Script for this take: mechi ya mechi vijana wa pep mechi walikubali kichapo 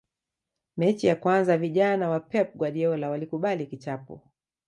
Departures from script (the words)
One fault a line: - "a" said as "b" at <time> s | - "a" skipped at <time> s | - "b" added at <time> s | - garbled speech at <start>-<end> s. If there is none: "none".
- "mechi" said as "kwanza" at 1.1 s
- "mechi" said as "guardiola" at 2.5 s